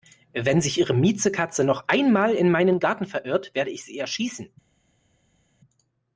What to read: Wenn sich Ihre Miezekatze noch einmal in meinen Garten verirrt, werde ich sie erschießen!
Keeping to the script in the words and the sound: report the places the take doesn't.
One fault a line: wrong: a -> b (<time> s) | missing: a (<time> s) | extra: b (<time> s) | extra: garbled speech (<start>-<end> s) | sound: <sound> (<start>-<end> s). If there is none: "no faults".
no faults